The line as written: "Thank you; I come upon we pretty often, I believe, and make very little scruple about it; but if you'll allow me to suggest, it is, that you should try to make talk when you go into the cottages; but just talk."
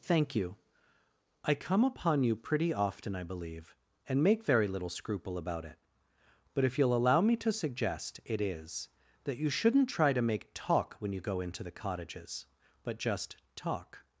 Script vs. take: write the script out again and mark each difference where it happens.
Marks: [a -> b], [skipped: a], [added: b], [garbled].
"Thank you; I come upon [we -> you] pretty often, I believe, and make very little scruple about it; but if you'll allow me to suggest, it is, that you [should -> shouldn't] try to make talk when you go into the cottages; but just talk."